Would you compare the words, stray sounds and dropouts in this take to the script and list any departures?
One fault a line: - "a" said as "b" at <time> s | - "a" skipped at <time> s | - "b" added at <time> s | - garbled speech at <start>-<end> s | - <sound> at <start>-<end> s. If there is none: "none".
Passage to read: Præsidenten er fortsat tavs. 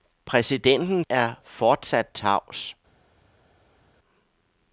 none